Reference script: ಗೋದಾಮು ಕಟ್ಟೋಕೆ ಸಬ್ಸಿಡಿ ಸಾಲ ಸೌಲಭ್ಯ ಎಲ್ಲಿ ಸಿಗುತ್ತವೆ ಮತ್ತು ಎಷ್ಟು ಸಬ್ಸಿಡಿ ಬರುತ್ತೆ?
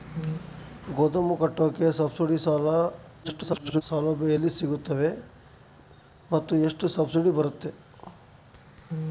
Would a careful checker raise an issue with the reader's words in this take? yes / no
yes